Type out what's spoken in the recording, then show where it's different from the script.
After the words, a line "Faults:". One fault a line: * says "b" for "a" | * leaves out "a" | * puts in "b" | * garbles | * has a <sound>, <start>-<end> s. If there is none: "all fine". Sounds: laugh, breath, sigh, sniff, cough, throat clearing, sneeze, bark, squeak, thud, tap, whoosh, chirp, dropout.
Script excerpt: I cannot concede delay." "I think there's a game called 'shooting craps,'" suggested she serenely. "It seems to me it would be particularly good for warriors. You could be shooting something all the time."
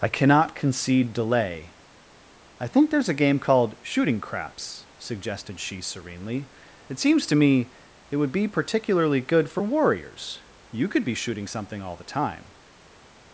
I cannot concede delay." "I think there's a game called 'shooting craps,'" suggested she serenely. "It seems to me it would be particularly good for warriors. You could be shooting something all the time."
Faults:
all fine